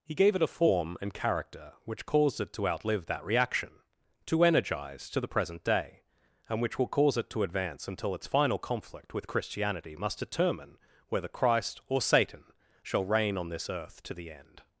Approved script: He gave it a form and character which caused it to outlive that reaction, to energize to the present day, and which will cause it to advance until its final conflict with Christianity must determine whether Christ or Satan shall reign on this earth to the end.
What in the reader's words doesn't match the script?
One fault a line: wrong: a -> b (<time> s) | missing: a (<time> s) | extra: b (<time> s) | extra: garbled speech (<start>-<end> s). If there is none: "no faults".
no faults